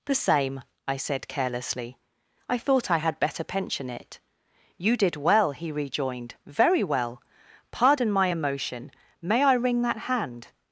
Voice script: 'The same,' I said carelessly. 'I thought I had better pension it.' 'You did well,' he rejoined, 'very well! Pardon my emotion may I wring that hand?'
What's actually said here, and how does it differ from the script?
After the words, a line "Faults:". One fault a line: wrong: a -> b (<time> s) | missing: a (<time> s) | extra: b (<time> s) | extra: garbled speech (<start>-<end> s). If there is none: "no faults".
'The same,' I said carelessly. 'I thought I had better pension it.' 'You did well,' he rejoined, 'very well! Pardon my emotion may I wring that hand?'
Faults:
no faults